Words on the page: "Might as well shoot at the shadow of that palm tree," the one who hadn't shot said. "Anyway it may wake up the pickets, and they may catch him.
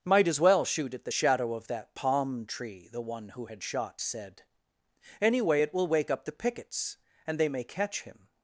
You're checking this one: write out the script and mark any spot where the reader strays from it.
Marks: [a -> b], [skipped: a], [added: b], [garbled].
"Might as well shoot at the shadow of that palm tree," the one who [hadn't -> had] shot said. "Anyway it [may -> will] wake up the pickets, and they may catch him.